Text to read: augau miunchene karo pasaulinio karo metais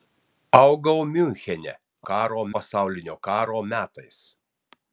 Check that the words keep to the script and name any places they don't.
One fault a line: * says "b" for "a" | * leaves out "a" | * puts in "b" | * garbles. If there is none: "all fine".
all fine